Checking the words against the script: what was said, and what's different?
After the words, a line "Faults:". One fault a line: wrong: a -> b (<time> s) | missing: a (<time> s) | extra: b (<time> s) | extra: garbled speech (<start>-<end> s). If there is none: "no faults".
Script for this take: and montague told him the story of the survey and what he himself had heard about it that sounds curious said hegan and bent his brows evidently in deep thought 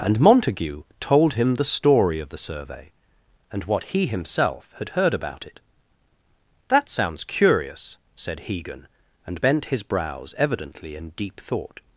and montague told him the story of the survey and what he himself had heard about it that sounds curious said hegan and bent his brows evidently in deep thought
Faults:
no faults